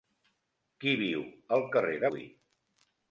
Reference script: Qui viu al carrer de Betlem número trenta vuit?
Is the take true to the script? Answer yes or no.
no